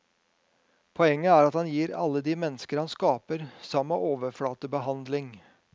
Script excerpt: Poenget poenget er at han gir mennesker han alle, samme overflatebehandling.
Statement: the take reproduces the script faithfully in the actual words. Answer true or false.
false